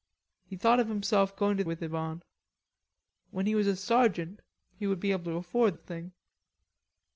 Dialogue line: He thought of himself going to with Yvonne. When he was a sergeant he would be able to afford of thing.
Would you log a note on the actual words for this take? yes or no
no